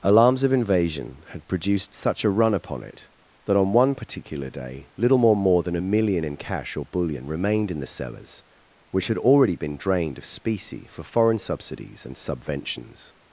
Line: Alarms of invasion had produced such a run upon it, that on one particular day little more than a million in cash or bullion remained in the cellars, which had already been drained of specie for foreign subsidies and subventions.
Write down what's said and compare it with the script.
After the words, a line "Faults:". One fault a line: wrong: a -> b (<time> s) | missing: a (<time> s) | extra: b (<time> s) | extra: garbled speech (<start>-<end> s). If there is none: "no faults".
Alarms of invasion had produced such a run upon it, that on one particular day little more more than a million in cash or bullion remained in the cellars, which had already been drained of specie for foreign subsidies and subventions.
Faults:
extra: more (5.3 s)